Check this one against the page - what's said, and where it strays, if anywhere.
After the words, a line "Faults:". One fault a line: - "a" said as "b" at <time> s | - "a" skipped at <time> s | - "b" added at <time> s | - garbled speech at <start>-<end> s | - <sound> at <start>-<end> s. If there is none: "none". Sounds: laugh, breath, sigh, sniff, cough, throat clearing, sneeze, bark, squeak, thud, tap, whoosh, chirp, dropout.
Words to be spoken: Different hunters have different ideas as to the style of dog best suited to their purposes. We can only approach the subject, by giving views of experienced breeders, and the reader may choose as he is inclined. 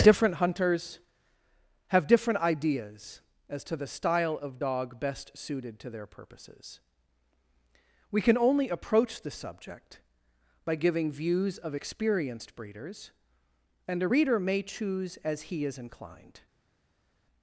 Different hunters have different ideas as to the style of dog best suited to their purposes. We can only approach the subject, by giving views of experienced breeders, and a reader may choose as he is inclined.
Faults:
- "the" said as "a" at 14.0 s